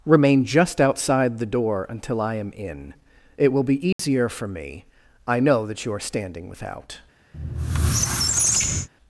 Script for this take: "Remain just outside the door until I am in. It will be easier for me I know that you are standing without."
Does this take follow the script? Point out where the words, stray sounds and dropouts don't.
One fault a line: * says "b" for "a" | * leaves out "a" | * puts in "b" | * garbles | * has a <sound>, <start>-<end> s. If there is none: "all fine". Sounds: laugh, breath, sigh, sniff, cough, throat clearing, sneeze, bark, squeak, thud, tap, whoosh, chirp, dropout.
* has a dropout, 3.9-4.0 s
* has a squeak, 7.3-8.9 s